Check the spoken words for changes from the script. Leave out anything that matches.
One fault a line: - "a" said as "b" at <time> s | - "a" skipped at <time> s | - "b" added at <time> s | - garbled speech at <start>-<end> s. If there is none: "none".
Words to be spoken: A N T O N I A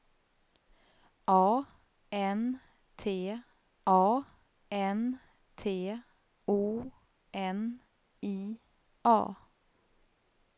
- "a N T" added at 3.9 s